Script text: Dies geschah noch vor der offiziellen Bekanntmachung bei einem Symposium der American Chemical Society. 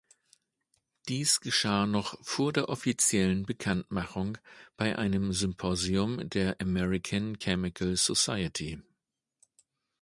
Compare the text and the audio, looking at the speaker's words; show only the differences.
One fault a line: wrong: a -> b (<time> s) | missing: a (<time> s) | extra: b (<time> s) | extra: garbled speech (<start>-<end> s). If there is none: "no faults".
no faults